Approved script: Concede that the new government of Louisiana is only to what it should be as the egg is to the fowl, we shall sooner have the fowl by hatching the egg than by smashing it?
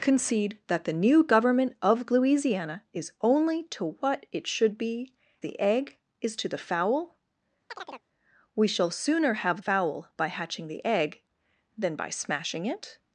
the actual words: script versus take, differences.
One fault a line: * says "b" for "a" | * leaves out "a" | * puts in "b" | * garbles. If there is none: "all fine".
* leaves out "as"
* leaves out "the"